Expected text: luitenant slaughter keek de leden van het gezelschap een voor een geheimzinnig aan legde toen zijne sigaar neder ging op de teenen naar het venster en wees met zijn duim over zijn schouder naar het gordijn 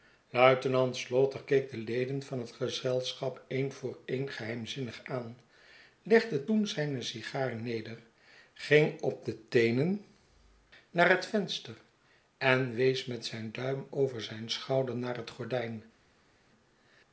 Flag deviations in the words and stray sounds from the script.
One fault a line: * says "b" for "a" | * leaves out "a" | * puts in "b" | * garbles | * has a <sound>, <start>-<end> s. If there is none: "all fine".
all fine